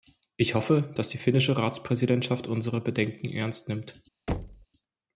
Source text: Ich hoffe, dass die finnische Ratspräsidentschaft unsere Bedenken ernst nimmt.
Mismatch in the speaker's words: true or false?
false